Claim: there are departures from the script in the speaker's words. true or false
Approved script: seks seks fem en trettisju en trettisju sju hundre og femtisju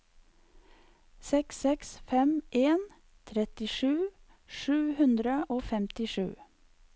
true